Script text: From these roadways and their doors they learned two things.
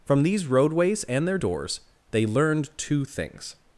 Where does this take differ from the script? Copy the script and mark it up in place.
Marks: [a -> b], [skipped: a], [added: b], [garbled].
From these roadways and their doors they learned two things.